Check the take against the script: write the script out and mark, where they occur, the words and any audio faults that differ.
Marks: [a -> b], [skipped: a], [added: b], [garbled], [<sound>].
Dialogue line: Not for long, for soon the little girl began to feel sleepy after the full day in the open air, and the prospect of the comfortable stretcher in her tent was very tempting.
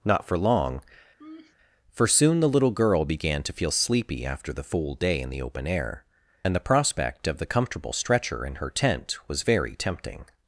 Not for long, [laugh] for soon the little girl began to feel sleepy after the full day in the open air, and the prospect of the comfortable stretcher in her tent was very tempting.